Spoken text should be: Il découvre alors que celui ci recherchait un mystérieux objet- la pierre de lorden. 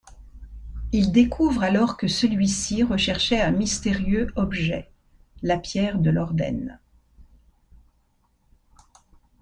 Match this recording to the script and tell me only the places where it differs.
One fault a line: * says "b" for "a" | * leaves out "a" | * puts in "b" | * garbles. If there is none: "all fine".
all fine